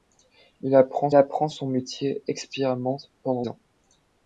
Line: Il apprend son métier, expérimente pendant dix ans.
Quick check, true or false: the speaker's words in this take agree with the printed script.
false